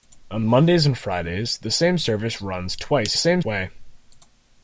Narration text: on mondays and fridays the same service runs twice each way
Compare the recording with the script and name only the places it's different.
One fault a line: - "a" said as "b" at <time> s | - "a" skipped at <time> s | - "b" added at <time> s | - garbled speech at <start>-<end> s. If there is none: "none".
- "each" said as "same" at 3.1 s